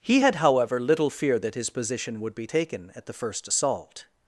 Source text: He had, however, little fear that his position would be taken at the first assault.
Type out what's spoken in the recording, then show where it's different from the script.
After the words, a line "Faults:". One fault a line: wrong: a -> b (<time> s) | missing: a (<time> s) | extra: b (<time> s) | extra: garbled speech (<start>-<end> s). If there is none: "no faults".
He had, however, little fear that his position would be taken at the first assault.
Faults:
no faults